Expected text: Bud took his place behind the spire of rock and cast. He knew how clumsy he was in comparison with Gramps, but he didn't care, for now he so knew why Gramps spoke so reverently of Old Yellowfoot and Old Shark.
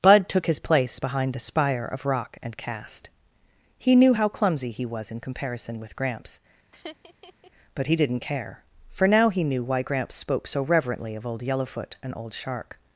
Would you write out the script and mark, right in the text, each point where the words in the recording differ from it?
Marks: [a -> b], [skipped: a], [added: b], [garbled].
Bud took his place behind the spire of rock and cast. He knew how clumsy he was in comparison with Gramps, but he didn't care, for now he [skipped: so] knew why Gramps spoke so reverently of Old Yellowfoot and Old Shark.